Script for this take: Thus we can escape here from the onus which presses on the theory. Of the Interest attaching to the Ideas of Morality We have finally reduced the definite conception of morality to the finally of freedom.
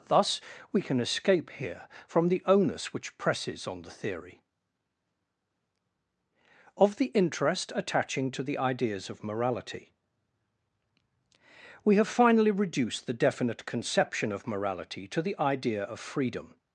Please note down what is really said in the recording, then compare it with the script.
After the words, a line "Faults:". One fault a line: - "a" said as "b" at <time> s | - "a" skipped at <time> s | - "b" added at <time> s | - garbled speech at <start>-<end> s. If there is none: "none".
Thus we can escape here from the onus which presses on the theory. Of the Interest attaching to the Ideas of Morality We have finally reduced the definite conception of morality to the idea of freedom.
Faults:
- "finally" said as "idea" at 15.4 s